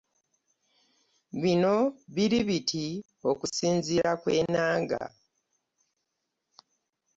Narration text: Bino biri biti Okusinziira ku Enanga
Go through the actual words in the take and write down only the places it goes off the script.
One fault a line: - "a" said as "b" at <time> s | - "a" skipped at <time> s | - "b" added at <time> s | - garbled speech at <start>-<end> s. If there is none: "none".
none